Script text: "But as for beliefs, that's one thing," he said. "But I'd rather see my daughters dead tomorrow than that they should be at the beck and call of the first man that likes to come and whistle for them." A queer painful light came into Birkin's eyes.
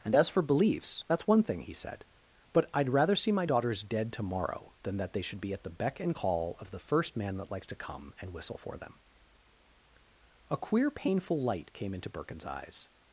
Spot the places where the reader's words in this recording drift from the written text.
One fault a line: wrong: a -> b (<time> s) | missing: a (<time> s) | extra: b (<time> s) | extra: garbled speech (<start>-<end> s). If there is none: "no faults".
wrong: But -> And (0.0 s)